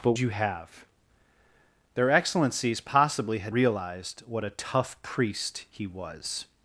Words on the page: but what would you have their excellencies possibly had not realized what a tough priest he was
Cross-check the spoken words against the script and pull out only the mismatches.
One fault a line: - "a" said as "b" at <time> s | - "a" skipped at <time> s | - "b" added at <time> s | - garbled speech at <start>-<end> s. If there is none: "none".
- "what would" skipped at 0.1 s
- "not" skipped at 3.5 s